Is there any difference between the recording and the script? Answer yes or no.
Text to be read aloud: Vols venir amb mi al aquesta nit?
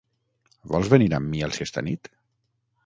no